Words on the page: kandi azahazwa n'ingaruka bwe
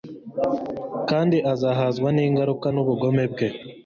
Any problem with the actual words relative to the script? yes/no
yes